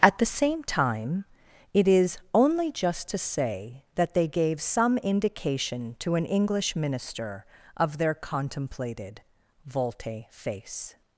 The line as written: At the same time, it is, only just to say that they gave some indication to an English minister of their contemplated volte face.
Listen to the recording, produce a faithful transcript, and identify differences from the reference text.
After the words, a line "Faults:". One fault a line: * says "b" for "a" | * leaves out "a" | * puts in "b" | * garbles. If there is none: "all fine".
At the same time, it is, only just to say that they gave some indication to an English minister of their contemplated volte face.
Faults:
all fine